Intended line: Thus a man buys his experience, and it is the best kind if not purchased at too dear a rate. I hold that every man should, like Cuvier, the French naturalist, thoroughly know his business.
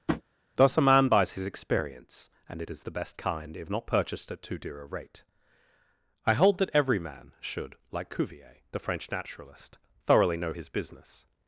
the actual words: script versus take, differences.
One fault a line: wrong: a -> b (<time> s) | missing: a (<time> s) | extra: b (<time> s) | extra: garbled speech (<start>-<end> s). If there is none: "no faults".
no faults